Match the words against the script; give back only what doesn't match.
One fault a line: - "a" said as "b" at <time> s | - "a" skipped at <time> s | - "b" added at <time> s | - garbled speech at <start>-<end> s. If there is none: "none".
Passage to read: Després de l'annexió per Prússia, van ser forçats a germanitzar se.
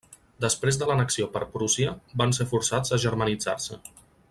none